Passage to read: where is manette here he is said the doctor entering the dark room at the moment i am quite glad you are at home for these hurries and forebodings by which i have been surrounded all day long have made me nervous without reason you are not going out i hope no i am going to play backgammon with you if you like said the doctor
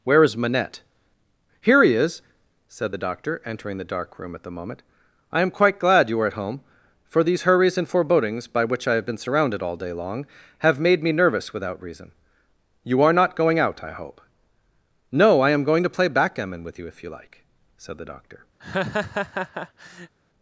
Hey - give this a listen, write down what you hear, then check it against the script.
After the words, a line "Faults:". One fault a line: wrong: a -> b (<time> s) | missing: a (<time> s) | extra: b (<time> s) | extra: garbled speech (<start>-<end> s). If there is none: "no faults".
where is manette here he is said the doctor entering the dark room at the moment i am quite glad you are at home for these hurries and forebodings by which i have been surrounded all day long have made me nervous without reason you are not going out i hope no i am going to play backgammon with you if you like said the doctor
Faults:
no faults